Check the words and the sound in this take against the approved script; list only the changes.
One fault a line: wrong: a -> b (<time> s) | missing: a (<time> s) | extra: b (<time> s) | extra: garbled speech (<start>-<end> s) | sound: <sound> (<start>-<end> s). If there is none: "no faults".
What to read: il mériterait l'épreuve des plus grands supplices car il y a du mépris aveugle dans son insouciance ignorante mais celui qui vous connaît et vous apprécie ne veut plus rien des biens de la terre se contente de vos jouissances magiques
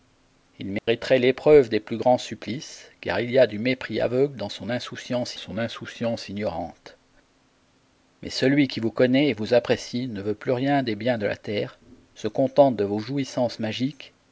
sound: dropout (0.8-0.9 s)
extra: son insouciance (5.4 s)